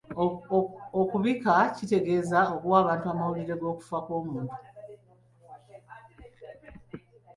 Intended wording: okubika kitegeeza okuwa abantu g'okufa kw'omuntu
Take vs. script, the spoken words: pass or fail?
fail